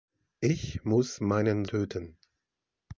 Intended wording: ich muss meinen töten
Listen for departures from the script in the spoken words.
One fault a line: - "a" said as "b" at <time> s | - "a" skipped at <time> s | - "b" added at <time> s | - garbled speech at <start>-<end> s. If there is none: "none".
none